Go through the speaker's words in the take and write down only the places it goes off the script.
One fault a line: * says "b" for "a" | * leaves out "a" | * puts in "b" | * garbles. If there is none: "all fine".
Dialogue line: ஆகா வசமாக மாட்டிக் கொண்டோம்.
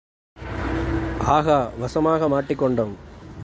all fine